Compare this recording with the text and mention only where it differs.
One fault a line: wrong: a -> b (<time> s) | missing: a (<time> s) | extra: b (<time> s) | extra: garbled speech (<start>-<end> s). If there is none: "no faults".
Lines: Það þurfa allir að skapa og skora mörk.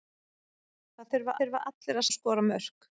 extra: þurfa (1.4 s)
missing: skapa (2.1 s)